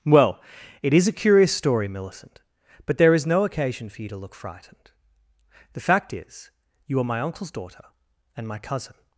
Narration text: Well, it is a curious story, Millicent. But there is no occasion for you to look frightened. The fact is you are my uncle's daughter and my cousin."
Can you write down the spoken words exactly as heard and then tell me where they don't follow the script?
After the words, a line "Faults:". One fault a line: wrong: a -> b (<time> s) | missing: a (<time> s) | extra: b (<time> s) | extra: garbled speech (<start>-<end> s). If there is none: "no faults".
Well, it is a curious story, Millicent. But there is no occasion for you to look frightened. The fact is you are my uncle's daughter and my cousin."
Faults:
no faults